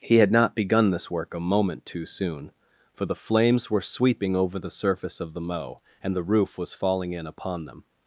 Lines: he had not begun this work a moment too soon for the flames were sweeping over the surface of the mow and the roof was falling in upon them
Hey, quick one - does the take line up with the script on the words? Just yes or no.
yes